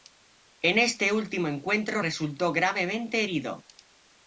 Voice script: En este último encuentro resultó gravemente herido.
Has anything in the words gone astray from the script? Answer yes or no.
no